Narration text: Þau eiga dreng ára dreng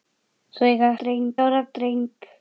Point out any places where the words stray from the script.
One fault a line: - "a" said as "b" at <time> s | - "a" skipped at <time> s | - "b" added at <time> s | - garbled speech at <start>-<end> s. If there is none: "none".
none